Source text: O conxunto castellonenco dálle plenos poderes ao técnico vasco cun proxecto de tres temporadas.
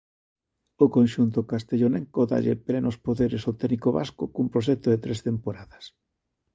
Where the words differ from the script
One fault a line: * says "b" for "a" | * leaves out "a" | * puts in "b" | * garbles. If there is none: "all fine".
all fine